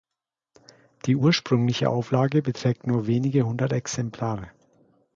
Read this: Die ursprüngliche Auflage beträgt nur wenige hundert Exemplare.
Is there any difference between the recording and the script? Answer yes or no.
no